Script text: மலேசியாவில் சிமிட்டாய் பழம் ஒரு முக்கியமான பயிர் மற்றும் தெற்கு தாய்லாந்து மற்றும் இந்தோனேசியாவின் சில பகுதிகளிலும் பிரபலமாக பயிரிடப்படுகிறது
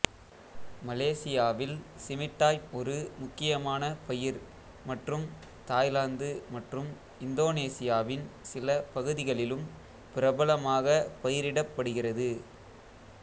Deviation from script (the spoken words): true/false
true